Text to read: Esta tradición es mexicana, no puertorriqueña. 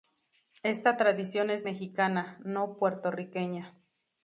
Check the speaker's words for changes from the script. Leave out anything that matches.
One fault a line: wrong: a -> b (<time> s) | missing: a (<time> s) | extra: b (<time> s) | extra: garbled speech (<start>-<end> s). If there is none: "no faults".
no faults